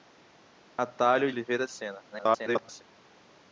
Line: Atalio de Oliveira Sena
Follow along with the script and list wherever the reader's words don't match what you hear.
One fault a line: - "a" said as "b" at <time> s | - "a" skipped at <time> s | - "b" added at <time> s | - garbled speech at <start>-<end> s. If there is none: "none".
- "de" skipped at 1.3 s
- garbled speech at 2.1-2.8 s